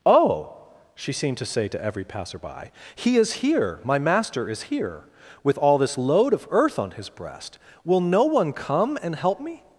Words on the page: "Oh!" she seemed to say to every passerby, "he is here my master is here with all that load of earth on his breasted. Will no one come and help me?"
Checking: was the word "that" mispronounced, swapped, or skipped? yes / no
yes